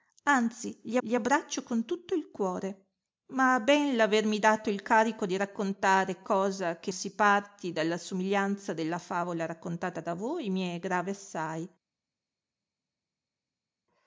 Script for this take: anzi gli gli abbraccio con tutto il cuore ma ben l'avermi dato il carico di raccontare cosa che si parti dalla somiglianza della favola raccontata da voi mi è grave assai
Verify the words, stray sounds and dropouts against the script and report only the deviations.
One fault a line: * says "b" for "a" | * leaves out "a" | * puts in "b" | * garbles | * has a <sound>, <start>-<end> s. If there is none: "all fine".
all fine